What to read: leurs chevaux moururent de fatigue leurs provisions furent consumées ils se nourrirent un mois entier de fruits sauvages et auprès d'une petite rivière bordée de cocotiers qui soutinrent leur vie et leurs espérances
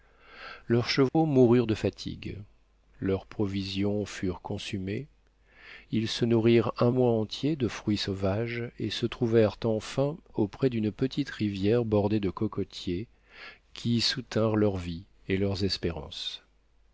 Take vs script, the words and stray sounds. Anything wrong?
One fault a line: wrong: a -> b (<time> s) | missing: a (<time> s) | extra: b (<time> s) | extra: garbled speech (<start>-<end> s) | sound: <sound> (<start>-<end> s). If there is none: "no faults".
sound: dropout (1.1-1.1 s)
extra: se trouvèrent enfin (8.9 s)